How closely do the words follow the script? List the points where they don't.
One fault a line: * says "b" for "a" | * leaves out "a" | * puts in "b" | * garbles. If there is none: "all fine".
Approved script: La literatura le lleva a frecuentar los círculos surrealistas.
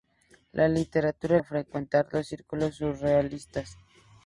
* leaves out "le lleva"